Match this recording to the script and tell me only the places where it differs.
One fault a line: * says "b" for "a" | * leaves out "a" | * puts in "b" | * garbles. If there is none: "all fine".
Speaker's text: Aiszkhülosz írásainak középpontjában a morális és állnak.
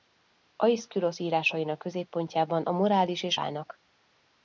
all fine